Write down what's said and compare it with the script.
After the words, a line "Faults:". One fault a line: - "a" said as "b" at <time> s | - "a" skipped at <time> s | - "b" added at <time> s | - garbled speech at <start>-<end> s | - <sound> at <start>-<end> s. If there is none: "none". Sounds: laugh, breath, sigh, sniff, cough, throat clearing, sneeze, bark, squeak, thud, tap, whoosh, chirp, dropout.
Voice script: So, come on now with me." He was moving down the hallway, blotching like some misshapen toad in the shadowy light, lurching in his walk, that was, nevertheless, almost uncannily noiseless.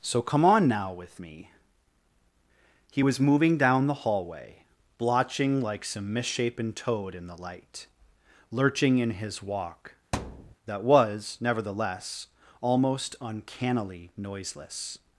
So, come on now with me." He was moving down the hallway, blotching like some misshapen toad in the light, lurching in his walk, that was, nevertheless, almost uncannily noiseless.
Faults:
- "shadowy" skipped at 7.4 s
- thud at 10.1-10.6 s